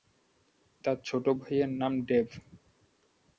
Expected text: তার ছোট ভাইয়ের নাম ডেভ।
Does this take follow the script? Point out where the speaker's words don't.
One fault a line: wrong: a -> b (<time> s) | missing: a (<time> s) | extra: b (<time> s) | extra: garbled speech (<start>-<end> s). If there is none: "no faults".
no faults